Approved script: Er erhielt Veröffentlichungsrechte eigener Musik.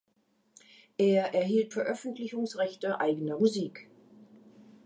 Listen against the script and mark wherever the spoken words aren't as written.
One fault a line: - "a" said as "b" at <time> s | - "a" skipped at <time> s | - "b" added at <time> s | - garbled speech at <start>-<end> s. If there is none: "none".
none